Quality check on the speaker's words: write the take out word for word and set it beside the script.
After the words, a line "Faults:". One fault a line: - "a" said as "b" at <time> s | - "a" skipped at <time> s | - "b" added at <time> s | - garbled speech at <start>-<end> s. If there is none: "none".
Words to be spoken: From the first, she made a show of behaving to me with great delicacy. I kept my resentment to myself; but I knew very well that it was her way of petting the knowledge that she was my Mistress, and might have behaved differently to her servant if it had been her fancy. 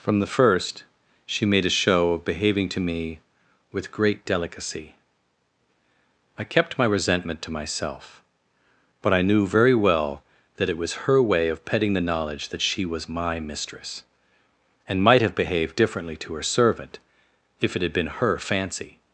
From the first, she made a show of behaving to me with great delicacy. I kept my resentment to myself; but I knew very well that it was her way of petting the knowledge that she was my Mistress, and might have behaved differently to her servant if it had been her fancy.
Faults:
none